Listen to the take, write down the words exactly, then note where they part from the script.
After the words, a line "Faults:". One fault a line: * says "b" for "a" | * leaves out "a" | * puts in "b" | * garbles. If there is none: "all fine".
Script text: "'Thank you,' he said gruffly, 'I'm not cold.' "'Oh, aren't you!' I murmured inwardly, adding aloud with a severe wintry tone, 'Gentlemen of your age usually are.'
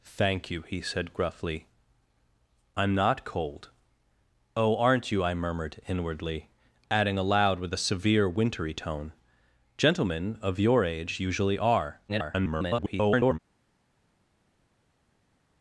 "'Thank you,' he said gruffly, 'I'm not cold.' "'Oh, aren't you!' I murmured inwardly, adding aloud with a severe wintry tone, 'Gentlemen of your age usually are.' [garbled]
Faults:
* garbles